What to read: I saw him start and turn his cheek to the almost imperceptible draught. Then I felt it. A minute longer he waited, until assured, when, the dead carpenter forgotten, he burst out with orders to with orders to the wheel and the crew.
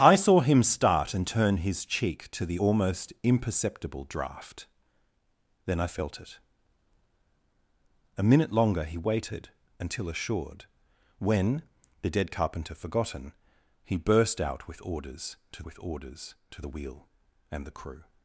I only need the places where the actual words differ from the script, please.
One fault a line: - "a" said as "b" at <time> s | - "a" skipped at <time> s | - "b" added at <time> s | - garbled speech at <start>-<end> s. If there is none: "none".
none